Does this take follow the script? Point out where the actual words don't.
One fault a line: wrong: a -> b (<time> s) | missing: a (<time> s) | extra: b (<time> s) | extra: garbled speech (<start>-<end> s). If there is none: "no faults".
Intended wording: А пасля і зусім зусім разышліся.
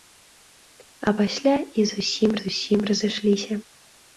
no faults